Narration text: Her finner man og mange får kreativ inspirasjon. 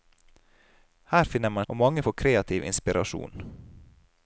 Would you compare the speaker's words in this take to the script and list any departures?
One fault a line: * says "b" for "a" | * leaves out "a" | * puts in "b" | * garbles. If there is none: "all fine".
all fine